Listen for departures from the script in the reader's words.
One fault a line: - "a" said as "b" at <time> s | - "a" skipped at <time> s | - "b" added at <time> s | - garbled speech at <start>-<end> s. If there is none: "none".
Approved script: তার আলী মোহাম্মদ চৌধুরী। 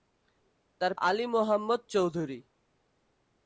none